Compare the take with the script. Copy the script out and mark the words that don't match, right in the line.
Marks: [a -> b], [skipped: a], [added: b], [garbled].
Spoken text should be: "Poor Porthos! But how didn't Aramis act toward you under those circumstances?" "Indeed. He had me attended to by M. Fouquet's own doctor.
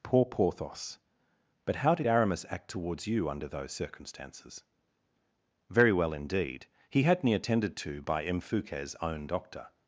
"Poor Porthos! But how [didn't -> did] Aramis act [toward -> towards] you under those circumstances?" [added: Very well] "Indeed. He had me attended to by M. Fouquet's own doctor.